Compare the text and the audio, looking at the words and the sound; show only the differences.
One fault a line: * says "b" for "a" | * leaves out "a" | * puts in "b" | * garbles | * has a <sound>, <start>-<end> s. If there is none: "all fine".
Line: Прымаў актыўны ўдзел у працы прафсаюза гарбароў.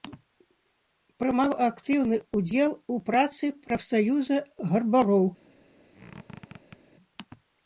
* has a squeak, 5.9-6.8 s